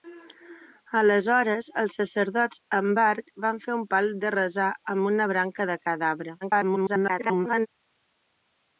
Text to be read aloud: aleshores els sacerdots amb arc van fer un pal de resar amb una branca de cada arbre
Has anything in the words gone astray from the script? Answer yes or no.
yes